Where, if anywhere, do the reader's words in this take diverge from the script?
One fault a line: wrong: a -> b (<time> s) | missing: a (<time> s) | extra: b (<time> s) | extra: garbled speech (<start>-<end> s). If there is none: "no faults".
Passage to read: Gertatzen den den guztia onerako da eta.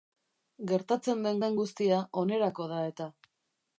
no faults